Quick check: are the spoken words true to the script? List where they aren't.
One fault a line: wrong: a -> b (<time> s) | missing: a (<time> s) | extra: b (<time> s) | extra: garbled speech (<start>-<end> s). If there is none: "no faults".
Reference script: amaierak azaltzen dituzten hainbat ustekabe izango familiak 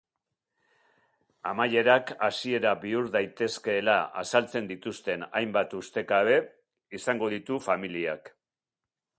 extra: hasiera bihur daitezkeela (2.3 s)
extra: ditu (7.3 s)